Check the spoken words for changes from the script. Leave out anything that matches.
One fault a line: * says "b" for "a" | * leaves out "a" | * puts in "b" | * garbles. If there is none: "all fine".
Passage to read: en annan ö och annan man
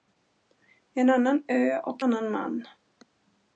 all fine